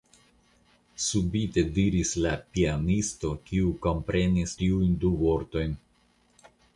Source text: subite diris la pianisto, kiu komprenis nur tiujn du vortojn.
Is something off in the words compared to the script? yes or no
yes